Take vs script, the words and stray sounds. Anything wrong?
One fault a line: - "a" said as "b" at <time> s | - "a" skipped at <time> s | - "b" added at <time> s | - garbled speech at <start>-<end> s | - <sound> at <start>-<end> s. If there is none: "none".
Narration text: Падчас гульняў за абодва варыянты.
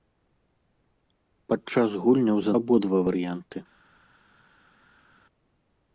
none